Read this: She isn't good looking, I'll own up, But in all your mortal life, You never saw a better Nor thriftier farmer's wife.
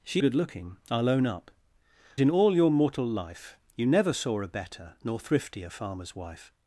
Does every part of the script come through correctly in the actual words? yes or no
no